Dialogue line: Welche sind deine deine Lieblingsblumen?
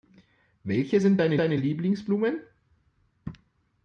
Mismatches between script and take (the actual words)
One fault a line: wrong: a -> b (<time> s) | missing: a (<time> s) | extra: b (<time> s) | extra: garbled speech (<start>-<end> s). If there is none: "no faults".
no faults